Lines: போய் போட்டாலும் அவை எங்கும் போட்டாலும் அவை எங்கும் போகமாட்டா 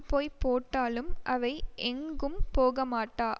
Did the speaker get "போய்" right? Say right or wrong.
right